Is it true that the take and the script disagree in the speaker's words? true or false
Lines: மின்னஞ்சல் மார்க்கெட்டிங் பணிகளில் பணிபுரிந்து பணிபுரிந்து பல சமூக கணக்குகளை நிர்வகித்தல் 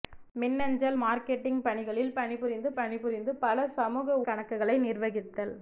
false